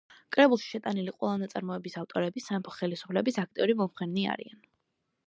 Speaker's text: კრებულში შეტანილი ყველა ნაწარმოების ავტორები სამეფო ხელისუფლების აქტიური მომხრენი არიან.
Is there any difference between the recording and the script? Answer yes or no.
no